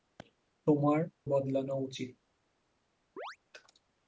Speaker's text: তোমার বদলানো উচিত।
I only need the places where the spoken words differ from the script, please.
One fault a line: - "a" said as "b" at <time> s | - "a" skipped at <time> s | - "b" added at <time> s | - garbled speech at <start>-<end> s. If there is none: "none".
none